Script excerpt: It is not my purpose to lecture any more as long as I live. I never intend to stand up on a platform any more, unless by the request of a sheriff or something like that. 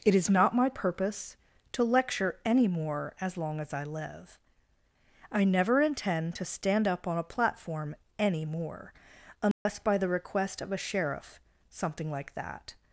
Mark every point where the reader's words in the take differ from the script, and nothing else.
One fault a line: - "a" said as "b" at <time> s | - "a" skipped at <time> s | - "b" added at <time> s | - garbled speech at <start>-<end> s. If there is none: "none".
- "or" skipped at 11.4 s